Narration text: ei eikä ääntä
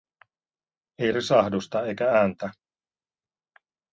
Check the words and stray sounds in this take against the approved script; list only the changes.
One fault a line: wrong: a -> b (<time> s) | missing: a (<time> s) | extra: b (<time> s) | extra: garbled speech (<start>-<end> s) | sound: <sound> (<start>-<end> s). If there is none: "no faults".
extra: risahdusta (1.1 s)